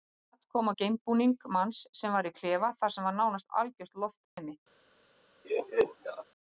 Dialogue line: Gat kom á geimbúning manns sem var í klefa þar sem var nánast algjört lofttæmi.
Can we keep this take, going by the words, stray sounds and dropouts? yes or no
no